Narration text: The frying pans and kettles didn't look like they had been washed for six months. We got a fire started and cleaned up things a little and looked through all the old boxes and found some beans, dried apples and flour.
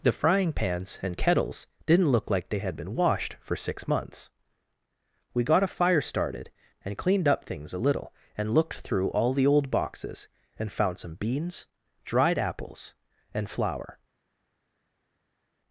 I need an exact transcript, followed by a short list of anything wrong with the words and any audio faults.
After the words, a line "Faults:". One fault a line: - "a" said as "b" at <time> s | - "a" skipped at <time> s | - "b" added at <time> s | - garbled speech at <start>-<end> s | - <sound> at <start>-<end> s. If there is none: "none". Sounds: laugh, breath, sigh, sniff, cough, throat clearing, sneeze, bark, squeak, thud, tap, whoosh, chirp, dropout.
The frying pans and kettles didn't look like they had been washed for six months. We got a fire started and cleaned up things a little and looked through all the old boxes and found some beans, dried apples and flour.
Faults:
none